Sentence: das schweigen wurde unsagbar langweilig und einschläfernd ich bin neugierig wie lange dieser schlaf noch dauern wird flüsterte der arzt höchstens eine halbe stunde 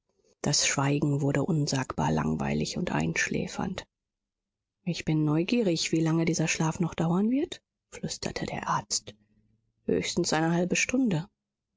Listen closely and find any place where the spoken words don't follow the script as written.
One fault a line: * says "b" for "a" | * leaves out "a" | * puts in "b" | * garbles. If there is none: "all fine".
all fine